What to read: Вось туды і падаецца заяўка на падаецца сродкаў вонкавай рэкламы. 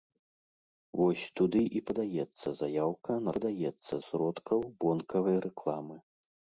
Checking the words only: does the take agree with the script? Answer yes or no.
yes